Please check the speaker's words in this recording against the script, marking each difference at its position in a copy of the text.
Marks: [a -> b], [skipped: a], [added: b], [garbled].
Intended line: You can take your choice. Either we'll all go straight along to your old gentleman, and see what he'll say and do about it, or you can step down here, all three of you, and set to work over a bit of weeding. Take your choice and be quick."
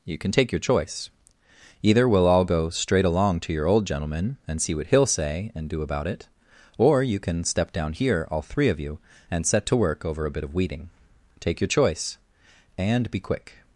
You can take your choice. Either we'll all go straight along to your old gentleman, and see what he'll say and do about it, or you can step down here, all three of you, and set to work over a bit of weeding. Take your choice and be quick."